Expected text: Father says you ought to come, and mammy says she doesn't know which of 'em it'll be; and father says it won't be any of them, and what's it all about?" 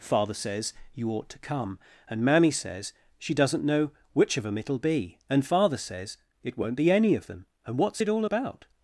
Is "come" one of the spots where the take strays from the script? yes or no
no